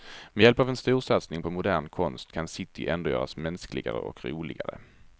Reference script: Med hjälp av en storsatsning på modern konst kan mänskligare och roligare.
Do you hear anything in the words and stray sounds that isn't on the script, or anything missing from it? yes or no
yes